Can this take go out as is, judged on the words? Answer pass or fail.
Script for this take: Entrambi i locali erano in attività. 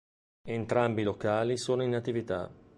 fail